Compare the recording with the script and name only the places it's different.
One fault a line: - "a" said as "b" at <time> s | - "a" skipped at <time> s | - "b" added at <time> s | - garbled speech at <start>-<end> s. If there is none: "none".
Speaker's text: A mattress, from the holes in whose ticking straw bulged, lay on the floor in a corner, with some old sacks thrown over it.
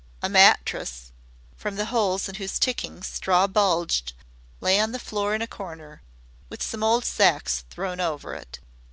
none